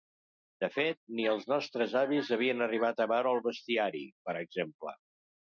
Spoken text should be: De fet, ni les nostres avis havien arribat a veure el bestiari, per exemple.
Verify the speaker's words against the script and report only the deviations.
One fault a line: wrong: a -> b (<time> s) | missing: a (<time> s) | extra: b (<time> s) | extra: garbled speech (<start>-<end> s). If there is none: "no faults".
wrong: les -> els (1.3 s)